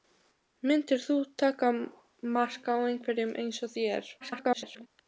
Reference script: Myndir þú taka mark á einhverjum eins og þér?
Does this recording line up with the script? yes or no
no